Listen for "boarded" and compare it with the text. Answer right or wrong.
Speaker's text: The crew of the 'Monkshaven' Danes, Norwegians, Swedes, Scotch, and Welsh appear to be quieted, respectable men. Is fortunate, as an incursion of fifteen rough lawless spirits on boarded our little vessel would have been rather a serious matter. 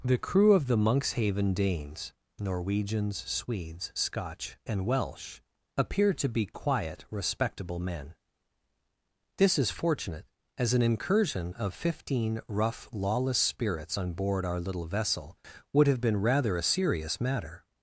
wrong